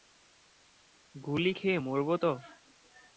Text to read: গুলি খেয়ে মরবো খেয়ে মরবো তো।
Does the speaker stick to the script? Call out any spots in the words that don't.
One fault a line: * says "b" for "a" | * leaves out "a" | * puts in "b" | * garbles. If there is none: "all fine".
* leaves out "খেয়ে মরবো"